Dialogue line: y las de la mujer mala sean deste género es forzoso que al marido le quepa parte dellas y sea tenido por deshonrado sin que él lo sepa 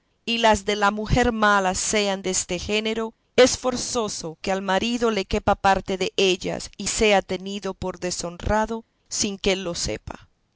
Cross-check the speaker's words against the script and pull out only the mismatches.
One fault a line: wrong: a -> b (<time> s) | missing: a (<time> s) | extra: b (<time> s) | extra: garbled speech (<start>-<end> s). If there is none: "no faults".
no faults